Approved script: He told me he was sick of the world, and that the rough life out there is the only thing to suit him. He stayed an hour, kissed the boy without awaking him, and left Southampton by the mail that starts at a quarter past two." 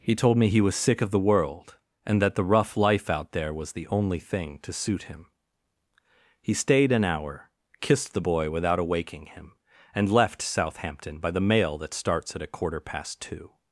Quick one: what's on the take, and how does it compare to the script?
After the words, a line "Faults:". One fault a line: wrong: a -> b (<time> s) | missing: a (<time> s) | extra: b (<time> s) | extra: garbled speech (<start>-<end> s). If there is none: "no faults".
He told me he was sick of the world, and that the rough life out there was the only thing to suit him. He stayed an hour, kissed the boy without awaking him, and left Southampton by the mail that starts at a quarter past two."
Faults:
wrong: is -> was (3.5 s)